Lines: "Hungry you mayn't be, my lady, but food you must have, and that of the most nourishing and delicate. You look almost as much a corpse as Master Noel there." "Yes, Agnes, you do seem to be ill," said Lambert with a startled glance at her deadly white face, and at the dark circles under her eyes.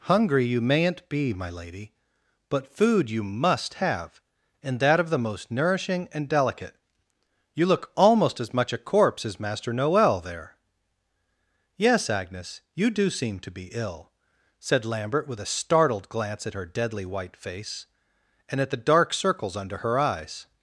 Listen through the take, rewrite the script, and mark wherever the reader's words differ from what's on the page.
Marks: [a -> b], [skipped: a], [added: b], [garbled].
"Hungry you mayn't be, my lady, but food you must have, and that of the most nourishing and delicate. You look almost as much a corpse as Master Noel there." "Yes, Agnes, you do seem to be ill," said Lambert with a startled glance at her deadly white face, and at the dark circles under her eyes.